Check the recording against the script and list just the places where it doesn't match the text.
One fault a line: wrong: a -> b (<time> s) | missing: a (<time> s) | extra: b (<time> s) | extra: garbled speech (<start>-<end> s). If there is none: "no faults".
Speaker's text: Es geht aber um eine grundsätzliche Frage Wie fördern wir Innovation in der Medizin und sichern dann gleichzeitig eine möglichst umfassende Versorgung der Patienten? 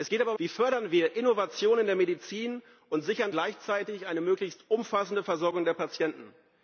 missing: eine grundsätzliche Frage (0.4 s)
missing: dann (3.3 s)